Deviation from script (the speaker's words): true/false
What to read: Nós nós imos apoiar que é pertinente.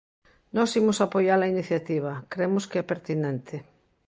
true